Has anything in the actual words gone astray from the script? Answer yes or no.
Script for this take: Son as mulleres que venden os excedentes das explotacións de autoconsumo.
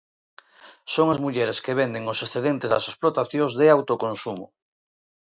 no